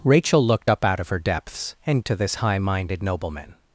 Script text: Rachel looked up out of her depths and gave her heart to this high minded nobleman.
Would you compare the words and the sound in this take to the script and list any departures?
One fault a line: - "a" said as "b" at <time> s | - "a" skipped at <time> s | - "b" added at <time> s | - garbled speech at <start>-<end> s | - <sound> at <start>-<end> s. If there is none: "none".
- "gave her heart" skipped at 2.0 s